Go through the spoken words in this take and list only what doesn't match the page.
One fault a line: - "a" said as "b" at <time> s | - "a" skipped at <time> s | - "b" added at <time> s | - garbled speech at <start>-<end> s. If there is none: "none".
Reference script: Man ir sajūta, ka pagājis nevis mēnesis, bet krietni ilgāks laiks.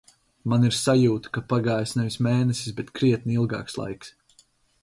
none